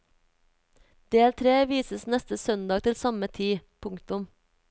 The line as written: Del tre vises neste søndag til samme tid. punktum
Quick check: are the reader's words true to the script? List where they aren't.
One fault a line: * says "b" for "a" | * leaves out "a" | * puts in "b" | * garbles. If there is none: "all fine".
all fine